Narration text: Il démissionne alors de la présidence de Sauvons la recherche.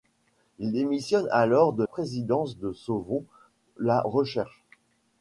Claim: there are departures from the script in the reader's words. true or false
true